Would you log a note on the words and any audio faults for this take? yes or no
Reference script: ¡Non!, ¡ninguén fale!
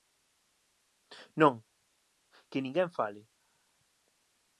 yes